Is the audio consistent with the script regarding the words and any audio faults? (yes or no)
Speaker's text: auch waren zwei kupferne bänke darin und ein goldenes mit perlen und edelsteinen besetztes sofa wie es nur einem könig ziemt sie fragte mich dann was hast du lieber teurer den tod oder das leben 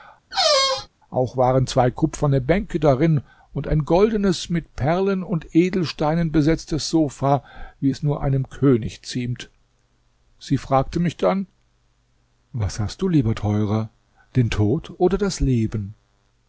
no